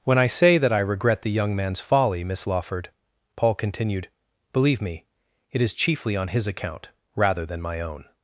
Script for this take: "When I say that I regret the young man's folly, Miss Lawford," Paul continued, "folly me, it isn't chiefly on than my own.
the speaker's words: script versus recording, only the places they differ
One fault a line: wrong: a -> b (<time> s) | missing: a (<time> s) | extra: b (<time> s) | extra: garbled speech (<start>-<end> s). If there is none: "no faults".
wrong: folly -> believe (4.5 s)
wrong: isn't -> is (5.6 s)
extra: his account rather (6.3 s)